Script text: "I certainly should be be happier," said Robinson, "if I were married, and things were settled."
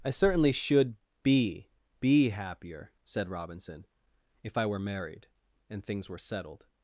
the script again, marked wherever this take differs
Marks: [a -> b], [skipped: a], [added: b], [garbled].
"I certainly should be be happier," said Robinson, "if I were married, and things were settled."